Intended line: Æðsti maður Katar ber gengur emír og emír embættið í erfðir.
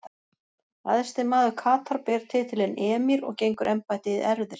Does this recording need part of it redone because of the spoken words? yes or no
yes